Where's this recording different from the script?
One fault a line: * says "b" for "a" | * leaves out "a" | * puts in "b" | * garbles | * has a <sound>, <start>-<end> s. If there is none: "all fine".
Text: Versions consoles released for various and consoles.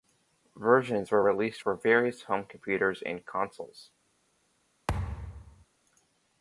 * says "were" for "consoles"
* puts in "home computers"
* has a thud, 4.9-5.7 s